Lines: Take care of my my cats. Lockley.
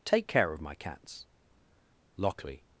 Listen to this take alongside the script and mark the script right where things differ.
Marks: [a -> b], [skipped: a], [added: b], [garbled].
Take care of my [skipped: my] cats. Lockley.